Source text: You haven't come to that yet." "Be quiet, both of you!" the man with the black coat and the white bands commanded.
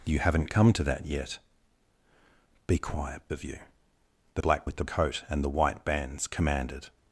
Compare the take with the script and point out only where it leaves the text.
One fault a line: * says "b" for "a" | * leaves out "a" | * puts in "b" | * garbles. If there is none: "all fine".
* leaves out "both"
* says "black" for "man"
* leaves out "black"